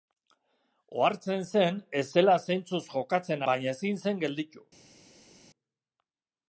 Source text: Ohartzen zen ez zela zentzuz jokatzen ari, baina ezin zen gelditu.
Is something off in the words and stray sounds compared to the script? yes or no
yes